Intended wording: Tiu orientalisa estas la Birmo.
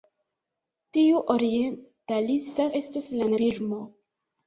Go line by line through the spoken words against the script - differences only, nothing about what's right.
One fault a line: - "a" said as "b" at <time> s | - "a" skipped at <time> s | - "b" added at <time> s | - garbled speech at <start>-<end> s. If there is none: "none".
none